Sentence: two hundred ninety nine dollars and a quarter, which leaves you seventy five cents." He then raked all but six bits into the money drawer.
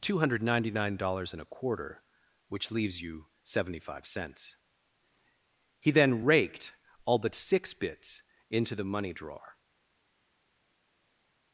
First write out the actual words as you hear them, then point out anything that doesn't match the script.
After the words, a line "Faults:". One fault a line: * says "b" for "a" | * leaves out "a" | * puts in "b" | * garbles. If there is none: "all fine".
two hundred ninety nine dollars and a quarter, which leaves you seventy five cents." He then raked all but six bits into the money drawer.
Faults:
all fine